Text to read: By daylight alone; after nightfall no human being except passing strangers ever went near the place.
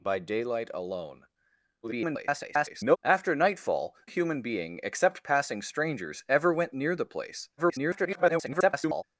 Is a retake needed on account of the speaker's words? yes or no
yes